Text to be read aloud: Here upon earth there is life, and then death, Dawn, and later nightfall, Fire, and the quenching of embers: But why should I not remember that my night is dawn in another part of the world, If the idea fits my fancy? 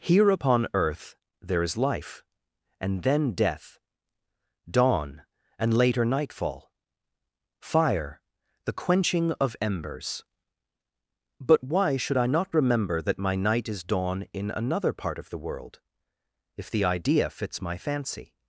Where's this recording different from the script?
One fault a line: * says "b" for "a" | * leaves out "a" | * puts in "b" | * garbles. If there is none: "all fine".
* leaves out "and"